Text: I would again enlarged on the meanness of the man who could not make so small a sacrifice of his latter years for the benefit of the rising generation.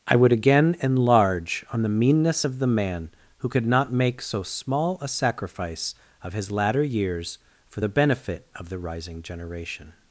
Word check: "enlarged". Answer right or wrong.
wrong